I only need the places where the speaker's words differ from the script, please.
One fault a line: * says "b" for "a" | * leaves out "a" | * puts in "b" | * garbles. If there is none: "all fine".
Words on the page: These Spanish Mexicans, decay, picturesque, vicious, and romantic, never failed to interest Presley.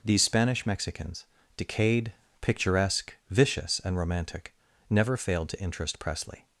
* says "decayed" for "decay"